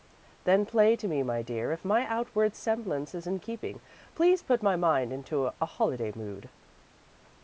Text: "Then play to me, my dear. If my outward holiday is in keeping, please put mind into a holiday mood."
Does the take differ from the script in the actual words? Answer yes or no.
yes